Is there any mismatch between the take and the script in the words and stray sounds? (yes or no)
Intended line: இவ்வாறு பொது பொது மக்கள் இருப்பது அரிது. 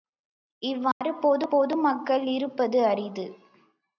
yes